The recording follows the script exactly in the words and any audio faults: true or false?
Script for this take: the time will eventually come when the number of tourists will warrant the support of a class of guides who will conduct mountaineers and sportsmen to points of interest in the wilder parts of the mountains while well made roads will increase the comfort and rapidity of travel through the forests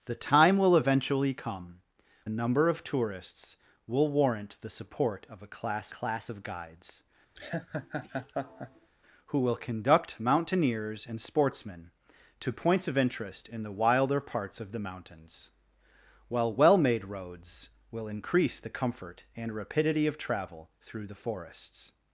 false